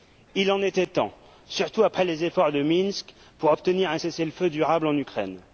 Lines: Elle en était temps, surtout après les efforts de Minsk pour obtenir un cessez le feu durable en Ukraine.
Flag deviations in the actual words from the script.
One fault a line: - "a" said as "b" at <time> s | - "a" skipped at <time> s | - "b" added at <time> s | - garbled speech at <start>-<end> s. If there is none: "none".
- "Elle" said as "Il" at 0.3 s